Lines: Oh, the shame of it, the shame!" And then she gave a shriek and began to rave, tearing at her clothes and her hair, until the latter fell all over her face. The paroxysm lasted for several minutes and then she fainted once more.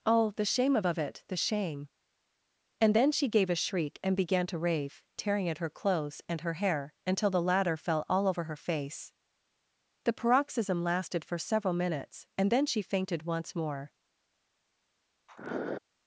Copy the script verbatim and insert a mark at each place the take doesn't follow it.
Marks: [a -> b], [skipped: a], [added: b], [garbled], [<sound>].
Oh, the shame of [added: of] it, the shame!" And then she gave a shriek and began to rave, tearing at her clothes and her hair, until the latter fell all over her face. The paroxysm lasted for several minutes and then she fainted once more. [sniff]